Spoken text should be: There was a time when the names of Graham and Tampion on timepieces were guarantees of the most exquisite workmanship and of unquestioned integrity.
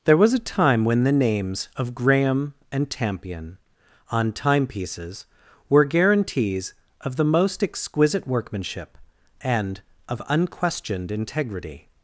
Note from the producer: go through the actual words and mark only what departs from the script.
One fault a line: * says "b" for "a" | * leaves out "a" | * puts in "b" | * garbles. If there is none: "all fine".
all fine